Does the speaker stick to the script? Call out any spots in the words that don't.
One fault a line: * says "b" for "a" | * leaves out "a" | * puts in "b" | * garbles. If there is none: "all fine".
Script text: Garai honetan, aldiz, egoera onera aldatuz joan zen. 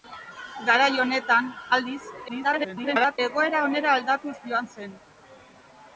* garbles